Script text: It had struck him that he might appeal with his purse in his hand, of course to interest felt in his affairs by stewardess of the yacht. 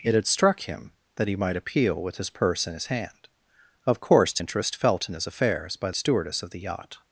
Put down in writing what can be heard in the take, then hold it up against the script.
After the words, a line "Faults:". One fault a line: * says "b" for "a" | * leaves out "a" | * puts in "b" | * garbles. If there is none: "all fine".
It had struck him that he might appeal with his purse in his hand, of course to interest felt in his affairs by stewardess of the yacht.
Faults:
all fine